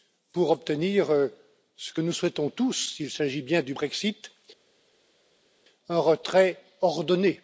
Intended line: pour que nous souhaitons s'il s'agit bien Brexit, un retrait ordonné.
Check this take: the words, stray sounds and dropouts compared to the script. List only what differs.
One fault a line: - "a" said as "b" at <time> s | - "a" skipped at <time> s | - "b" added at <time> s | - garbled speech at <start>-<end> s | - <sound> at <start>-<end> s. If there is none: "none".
- "obtenir ce" added at 0.5 s
- "tous" added at 2.5 s
- "du" added at 3.6 s